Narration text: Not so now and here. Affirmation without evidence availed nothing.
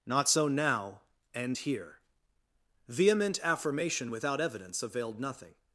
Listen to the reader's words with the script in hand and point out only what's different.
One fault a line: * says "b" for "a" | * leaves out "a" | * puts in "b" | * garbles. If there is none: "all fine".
* puts in "Vehement"